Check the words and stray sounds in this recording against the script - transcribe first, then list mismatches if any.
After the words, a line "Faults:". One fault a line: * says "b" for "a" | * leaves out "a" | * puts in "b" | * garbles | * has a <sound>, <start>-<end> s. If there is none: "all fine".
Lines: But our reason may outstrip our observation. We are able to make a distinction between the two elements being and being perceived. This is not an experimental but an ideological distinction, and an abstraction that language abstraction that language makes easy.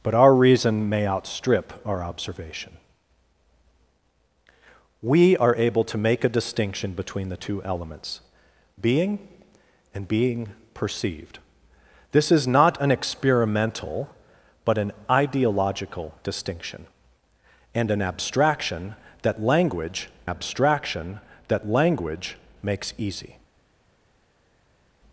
But our reason may outstrip our observation. We are able to make a distinction between the two elements being and being perceived. This is not an experimental but an ideological distinction, and an abstraction that language abstraction that language makes easy.
Faults:
all fine